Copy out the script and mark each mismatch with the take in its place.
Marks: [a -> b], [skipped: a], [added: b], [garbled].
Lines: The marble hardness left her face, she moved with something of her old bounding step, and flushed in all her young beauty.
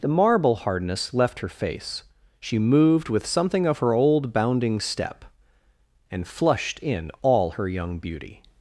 The marble hardness left her face, she moved with something of her old bounding step, and flushed in all her young beauty.